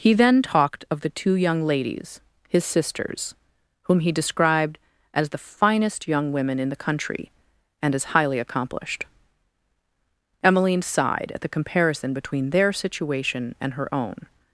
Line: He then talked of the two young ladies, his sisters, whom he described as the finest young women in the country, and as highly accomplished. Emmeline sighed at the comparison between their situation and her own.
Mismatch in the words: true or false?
false